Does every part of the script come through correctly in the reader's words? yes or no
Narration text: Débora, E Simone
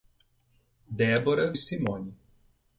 yes